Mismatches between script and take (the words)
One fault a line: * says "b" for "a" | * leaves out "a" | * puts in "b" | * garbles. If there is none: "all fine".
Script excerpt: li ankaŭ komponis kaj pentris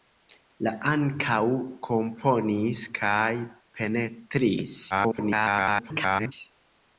* garbles